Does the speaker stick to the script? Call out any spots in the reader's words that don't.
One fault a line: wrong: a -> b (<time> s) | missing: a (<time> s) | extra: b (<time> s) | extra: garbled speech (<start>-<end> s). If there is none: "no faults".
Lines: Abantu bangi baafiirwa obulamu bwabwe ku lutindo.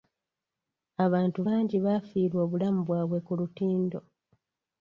no faults